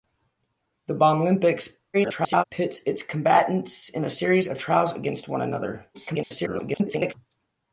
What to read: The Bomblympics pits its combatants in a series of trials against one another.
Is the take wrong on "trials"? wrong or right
right